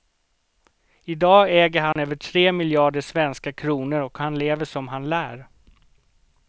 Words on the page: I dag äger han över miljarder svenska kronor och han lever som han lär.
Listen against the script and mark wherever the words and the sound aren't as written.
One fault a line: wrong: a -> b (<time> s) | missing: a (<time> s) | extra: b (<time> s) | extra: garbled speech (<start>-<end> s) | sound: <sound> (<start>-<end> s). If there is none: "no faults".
sound: dropout (1.9-2.0 s)
extra: tre (2.1 s)